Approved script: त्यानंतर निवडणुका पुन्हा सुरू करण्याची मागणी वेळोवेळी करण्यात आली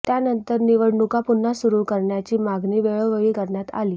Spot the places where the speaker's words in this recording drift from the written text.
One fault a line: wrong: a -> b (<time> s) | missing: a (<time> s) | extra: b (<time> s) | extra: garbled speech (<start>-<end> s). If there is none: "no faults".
no faults